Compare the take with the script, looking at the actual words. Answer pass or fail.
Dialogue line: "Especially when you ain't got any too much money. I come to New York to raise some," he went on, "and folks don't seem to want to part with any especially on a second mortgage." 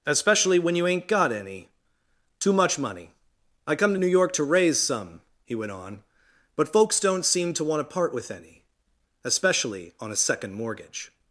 fail